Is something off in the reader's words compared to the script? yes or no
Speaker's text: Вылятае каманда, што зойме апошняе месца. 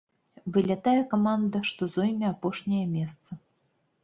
no